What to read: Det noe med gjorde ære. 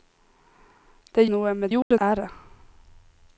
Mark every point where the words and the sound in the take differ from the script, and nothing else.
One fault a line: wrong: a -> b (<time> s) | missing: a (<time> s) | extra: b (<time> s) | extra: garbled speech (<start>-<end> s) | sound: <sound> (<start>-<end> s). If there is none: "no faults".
sound: dropout (1.8-1.9 s)